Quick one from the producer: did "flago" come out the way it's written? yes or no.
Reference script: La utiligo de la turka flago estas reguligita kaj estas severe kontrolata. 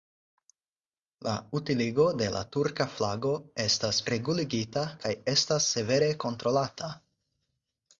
yes